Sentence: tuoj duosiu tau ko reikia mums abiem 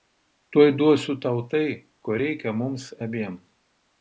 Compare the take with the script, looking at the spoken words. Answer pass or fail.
fail